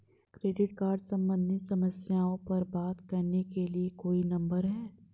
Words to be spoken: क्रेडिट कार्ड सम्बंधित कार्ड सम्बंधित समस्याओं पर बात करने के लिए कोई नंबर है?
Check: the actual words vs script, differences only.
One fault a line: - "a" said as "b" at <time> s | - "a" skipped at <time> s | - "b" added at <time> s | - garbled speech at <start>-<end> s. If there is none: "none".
- "कार्ड सम्बंधित" skipped at 1.6 s